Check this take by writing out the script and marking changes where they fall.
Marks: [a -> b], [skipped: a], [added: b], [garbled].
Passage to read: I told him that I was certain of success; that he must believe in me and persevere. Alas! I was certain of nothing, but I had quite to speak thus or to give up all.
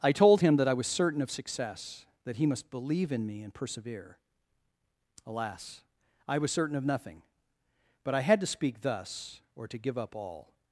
I told him that I was certain of success; that he must believe in me and persevere. Alas! I was certain of nothing, but I had [skipped: quite] to speak thus or to give up all.